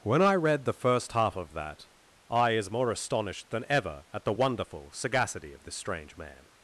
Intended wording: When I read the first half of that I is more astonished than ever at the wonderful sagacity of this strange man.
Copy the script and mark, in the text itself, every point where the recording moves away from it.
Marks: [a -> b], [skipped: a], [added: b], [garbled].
When I read the first half of that I is more astonished than ever at the wonderful sagacity of this strange man.